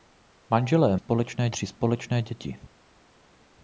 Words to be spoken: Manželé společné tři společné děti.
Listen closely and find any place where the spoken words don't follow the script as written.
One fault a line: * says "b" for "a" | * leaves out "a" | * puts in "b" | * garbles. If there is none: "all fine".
all fine